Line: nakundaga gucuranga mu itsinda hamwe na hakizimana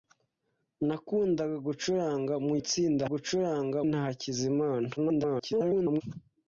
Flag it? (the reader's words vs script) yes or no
yes